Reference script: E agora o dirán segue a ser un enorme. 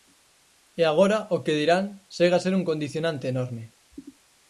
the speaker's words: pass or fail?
fail